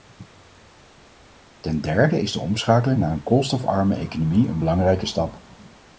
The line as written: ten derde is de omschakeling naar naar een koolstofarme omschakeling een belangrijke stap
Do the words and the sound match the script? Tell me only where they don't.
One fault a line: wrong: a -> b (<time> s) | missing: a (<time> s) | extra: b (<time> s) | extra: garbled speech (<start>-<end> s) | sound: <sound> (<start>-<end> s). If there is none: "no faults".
missing: naar (3.1 s)
wrong: omschakeling -> economie (3.9 s)